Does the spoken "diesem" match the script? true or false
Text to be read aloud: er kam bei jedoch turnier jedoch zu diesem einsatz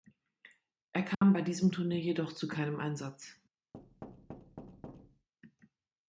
false